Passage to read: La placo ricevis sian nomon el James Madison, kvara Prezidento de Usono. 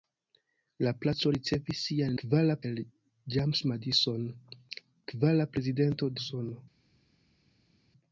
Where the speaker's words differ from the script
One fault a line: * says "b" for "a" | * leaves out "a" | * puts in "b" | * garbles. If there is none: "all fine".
* says "kvara" for "nomon"
* leaves out "de"